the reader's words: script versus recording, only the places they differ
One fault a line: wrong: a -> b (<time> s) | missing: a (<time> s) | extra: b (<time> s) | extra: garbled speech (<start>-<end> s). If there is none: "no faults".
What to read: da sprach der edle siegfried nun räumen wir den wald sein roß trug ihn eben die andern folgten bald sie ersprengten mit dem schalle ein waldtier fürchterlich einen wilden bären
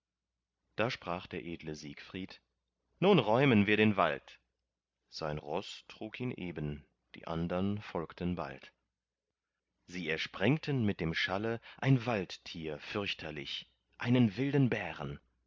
no faults